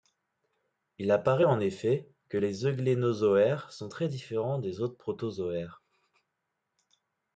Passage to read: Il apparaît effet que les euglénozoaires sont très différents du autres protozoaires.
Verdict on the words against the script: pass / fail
fail